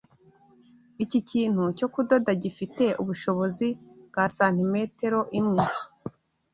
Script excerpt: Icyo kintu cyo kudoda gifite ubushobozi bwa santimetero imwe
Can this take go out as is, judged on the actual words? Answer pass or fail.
fail